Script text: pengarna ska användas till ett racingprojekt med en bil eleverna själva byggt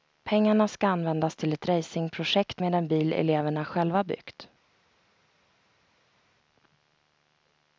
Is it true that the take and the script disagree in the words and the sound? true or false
false